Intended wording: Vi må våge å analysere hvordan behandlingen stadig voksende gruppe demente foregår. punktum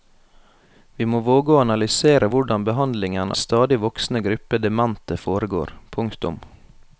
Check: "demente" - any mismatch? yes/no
no